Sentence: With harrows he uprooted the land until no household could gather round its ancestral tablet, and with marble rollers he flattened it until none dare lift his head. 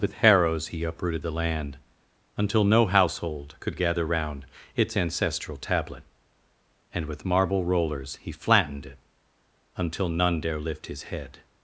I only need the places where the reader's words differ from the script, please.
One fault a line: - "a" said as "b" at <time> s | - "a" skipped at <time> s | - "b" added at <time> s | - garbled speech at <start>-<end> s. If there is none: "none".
none